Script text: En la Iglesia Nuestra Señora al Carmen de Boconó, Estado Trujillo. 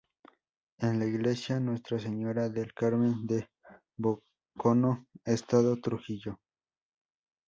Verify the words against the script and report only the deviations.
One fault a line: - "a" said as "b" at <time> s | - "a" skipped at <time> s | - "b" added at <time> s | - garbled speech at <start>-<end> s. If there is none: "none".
- "al" said as "del" at 2.5 s